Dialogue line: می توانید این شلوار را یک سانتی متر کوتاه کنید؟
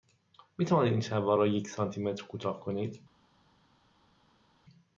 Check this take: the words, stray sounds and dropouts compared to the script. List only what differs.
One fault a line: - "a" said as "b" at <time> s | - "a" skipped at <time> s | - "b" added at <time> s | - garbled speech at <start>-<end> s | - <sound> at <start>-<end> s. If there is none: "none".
none